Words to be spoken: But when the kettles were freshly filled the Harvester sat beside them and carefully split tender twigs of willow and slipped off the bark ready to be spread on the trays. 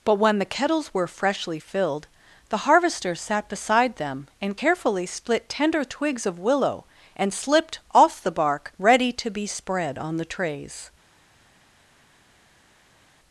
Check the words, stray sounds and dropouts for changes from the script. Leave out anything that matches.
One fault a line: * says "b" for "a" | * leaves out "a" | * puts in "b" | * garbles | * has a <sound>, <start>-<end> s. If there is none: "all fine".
all fine